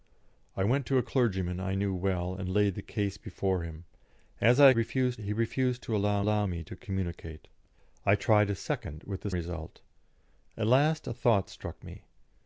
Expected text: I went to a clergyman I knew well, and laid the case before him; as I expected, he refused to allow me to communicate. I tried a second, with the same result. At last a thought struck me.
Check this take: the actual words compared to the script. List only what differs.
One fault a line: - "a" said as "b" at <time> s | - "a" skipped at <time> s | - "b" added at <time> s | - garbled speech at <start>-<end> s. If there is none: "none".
- "expected" said as "refused" at 4.7 s
- "allow" added at 6.2 s
- "same" skipped at 9.3 s